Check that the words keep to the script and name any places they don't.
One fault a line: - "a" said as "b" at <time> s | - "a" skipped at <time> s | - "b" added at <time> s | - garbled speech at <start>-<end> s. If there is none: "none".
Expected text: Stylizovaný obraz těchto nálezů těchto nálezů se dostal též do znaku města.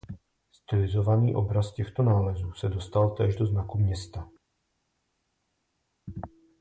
- "těchto nálezů" skipped at 2.5 s